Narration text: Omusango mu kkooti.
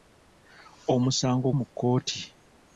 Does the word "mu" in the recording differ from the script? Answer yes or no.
no